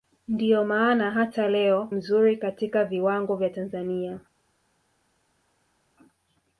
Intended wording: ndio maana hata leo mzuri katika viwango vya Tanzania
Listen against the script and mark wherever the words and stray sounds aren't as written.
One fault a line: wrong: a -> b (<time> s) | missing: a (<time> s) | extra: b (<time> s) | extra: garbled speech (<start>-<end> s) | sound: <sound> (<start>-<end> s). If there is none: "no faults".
no faults